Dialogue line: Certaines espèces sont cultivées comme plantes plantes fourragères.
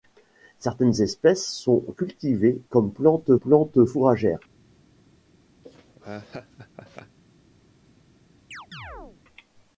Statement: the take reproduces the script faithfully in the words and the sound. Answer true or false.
false